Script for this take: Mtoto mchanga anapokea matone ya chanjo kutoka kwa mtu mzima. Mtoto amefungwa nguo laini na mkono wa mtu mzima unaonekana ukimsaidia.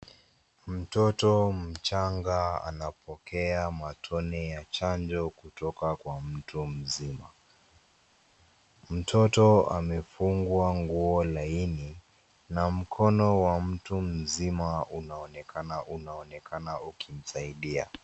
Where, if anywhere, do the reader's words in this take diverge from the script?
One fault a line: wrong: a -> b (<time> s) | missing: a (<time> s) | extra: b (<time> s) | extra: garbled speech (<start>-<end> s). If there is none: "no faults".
extra: unaonekana (15.8 s)